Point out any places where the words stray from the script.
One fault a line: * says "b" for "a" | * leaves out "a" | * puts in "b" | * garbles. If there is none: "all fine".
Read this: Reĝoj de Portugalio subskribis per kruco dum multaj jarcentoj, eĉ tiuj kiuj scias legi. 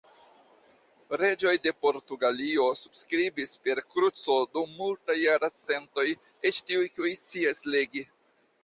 all fine